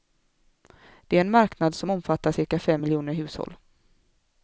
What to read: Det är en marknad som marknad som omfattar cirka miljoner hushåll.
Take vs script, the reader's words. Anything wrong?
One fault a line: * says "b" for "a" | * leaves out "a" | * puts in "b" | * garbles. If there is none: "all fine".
* leaves out "marknad som"
* puts in "fem"